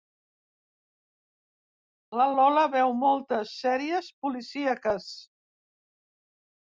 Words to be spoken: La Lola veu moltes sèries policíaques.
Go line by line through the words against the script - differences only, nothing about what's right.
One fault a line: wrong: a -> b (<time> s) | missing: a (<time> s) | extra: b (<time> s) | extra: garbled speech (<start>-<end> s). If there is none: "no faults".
no faults